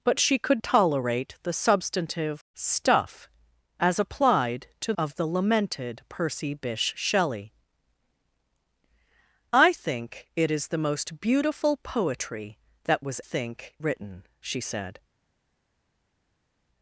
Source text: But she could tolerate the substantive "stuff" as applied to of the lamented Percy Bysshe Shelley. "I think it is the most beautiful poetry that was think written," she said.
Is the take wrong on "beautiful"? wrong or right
right